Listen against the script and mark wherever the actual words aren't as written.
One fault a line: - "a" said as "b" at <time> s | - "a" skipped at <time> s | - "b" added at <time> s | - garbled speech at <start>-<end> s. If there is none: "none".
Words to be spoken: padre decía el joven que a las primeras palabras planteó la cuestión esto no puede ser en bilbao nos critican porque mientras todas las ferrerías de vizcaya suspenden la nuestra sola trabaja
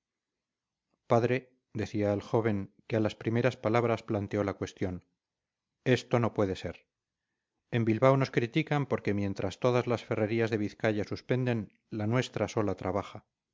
none